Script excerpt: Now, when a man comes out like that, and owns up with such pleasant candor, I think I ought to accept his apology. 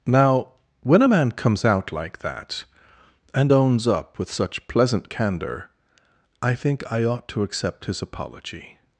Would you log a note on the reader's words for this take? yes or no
no